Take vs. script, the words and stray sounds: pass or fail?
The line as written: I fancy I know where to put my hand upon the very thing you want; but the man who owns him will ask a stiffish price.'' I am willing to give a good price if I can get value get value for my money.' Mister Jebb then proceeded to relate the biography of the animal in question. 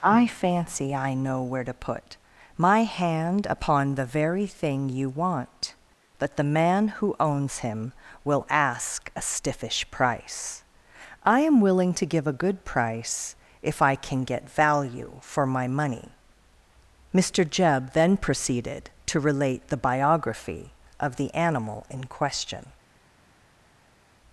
fail